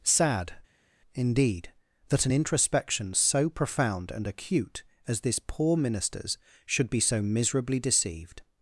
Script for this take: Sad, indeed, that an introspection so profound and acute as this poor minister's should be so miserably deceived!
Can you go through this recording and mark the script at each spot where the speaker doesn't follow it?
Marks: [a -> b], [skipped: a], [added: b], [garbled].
Sad, indeed, that an introspection so profound and acute as this poor minister's should be so miserably deceived!